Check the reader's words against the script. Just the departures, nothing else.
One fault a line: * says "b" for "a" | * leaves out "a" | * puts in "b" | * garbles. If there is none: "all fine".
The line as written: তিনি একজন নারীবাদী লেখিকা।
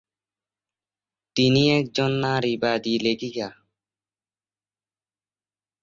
all fine